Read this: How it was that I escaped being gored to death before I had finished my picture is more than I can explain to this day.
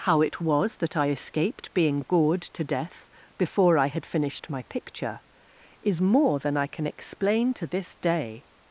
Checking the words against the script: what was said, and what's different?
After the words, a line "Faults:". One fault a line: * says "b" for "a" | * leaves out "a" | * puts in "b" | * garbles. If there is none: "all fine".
How it was that I escaped being gored to death before I had finished my picture is more than I can explain to this day.
Faults:
all fine